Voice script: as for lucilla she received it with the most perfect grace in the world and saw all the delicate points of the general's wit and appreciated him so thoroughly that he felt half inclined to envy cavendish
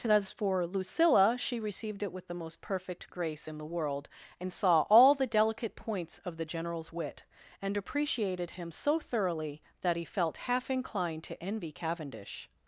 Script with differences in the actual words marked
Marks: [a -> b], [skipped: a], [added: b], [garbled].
as for lucilla she received it with the most perfect grace in the world and saw all the delicate points of the general's wit and appreciated him so thoroughly that he felt half inclined to envy cavendish